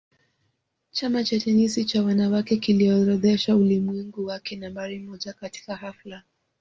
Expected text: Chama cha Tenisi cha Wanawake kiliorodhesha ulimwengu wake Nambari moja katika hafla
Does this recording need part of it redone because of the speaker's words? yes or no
no